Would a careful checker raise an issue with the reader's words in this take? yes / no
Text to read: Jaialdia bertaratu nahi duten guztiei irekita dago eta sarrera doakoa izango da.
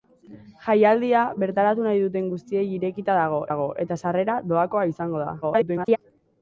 yes